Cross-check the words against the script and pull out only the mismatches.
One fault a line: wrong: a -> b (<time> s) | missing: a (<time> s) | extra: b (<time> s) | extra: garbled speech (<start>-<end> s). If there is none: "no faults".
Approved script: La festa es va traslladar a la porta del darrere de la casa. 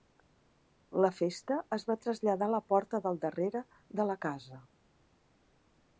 no faults